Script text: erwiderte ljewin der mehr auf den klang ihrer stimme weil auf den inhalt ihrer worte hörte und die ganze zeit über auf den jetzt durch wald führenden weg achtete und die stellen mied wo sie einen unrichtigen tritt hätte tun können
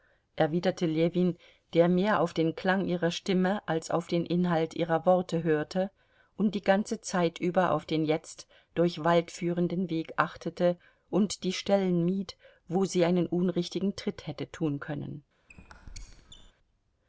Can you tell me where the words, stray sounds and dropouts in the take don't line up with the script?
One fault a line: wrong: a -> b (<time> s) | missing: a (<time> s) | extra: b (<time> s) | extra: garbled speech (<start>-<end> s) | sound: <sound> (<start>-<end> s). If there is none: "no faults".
wrong: weil -> als (3.7 s)
sound: squeak (15.5-16.5 s)